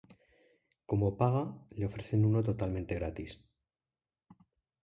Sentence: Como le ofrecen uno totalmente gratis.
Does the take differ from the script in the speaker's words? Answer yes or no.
yes